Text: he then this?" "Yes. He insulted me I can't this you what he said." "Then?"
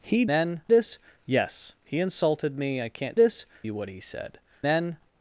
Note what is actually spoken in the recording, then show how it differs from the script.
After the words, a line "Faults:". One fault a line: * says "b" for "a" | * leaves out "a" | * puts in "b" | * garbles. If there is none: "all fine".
he then this?" "Yes. He insulted me I can't this you what he said." "Then?"
Faults:
all fine